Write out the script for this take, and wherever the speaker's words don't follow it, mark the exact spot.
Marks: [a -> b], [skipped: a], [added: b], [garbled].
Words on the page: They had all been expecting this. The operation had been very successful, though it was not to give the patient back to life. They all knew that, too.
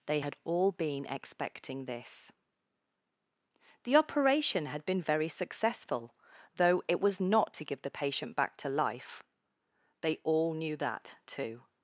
They had all been expecting this. The operation had been very successful, though it was not to give the patient back to life. They all knew that, too.